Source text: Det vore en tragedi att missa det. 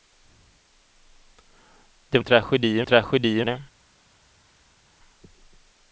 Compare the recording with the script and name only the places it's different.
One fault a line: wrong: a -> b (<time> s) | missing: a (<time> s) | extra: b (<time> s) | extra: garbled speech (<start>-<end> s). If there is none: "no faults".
missing: vore (2.2 s)
wrong: missa -> tragedi (2.8 s)